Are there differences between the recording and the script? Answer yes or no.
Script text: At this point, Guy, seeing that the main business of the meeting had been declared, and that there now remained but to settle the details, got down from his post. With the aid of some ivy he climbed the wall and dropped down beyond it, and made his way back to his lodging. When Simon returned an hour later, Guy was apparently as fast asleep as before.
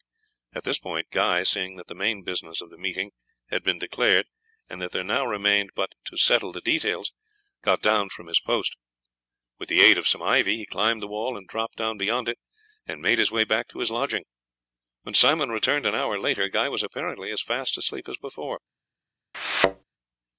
no